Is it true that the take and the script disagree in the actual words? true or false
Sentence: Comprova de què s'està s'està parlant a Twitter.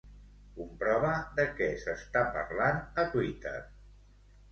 true